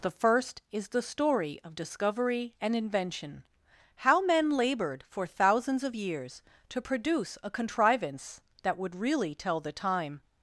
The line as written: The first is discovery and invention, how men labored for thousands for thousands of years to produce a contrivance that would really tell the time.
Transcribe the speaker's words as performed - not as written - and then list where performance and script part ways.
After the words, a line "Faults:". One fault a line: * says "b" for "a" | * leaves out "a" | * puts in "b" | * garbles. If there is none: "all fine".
The first is the story of discovery and invention, how men labored for thousands of years to produce a contrivance that would really tell the time.
Faults:
* puts in "the story of"
* leaves out "for thousands"